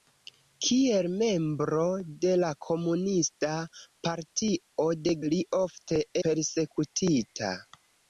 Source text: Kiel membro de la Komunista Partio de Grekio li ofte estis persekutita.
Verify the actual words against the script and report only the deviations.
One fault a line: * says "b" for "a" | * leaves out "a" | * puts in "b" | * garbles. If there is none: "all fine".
* leaves out "Grekio"
* leaves out "estis"